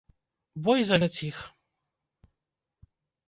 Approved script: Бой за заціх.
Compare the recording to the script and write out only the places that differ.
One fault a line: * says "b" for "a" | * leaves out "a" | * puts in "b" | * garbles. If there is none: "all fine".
all fine